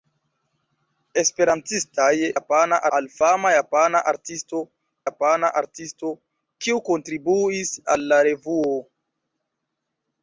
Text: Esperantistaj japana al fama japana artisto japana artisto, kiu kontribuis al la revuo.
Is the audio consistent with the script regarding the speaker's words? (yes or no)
yes